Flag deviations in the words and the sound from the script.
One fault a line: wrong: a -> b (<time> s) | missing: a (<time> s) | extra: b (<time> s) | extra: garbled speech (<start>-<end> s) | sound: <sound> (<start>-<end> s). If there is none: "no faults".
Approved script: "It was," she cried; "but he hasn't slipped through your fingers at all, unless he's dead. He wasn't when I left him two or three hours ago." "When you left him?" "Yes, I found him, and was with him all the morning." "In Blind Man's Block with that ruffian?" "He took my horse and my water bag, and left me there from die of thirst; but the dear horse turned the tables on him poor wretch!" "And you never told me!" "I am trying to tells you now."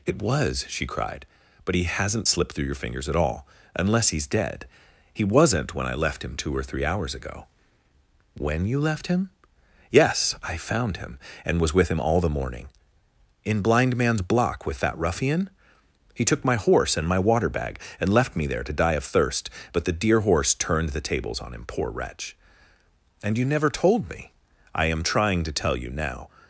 wrong: from -> to (18.6 s)
wrong: tells -> tell (25.5 s)